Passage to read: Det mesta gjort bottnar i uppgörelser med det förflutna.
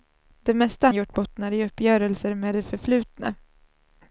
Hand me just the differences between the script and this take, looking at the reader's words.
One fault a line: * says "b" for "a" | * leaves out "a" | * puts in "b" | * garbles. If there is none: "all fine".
all fine